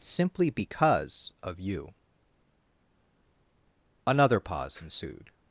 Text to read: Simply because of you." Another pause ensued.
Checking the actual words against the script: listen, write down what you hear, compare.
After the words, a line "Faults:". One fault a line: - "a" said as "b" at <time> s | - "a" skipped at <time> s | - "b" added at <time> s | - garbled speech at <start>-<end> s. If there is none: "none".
Simply because of you." Another pause ensued.
Faults:
none